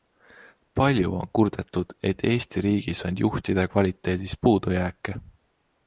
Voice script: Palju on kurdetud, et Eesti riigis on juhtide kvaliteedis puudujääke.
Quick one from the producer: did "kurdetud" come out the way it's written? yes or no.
yes